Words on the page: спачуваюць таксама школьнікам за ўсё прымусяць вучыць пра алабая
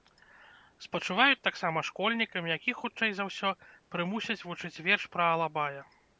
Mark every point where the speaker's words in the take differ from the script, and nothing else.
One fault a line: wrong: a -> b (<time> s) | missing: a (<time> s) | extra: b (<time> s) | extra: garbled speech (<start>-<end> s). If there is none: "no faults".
extra: якіх хутчэй (2.6 s)
extra: верш (4.9 s)